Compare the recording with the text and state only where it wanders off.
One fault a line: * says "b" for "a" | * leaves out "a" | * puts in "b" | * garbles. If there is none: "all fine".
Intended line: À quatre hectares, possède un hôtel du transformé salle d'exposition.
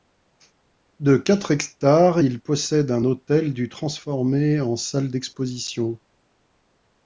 * says "De" for "À"
* puts in "il"
* puts in "en"